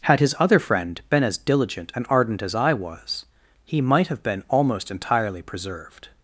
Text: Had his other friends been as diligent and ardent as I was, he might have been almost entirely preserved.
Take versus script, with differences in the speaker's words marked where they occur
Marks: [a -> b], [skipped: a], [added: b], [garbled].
Had his other [friends -> friend] been as diligent and ardent as I was, he might have been almost entirely preserved.